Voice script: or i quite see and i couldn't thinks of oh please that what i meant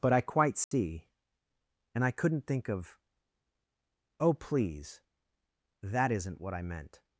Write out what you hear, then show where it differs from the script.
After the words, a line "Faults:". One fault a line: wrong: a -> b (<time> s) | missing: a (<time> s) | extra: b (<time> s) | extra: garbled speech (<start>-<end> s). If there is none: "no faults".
but i quite see and i couldn't think of oh please that isn't what i meant
Faults:
wrong: or -> but (0.0 s)
wrong: thinks -> think (2.5 s)
extra: isn't (6.1 s)